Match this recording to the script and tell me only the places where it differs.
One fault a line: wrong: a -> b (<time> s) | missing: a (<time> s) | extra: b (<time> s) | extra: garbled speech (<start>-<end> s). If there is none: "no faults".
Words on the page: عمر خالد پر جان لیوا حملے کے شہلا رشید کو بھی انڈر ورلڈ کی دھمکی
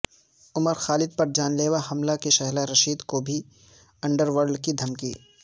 no faults